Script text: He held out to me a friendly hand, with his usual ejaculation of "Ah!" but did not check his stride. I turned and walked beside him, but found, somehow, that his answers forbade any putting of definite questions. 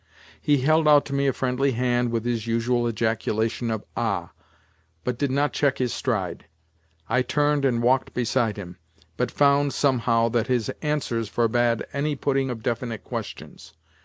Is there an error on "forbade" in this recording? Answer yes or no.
no